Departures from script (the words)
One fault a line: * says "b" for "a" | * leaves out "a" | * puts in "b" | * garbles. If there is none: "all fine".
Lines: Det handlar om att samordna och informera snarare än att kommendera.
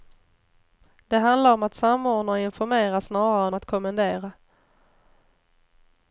all fine